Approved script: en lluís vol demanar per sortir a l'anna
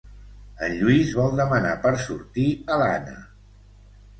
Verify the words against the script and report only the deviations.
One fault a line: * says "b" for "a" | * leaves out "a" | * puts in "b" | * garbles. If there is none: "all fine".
all fine